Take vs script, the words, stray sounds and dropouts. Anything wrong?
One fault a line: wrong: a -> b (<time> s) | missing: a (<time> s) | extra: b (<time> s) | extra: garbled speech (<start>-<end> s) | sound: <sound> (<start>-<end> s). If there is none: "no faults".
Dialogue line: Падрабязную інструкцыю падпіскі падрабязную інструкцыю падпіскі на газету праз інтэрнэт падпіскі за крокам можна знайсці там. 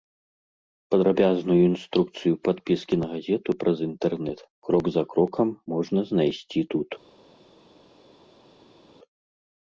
missing: падрабязную інструкцыю падпіскі (3.0 s)
wrong: падпіскі -> крок (4.7 s)
wrong: там -> тут (6.8 s)